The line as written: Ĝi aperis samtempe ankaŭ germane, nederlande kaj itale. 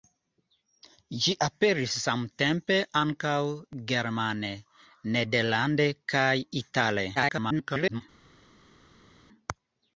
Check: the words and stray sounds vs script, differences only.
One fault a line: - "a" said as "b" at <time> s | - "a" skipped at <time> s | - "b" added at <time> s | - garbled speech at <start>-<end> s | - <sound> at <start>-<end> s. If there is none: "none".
- garbled speech at 7.2-8.0 s